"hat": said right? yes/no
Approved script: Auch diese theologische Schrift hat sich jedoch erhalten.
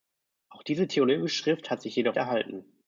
yes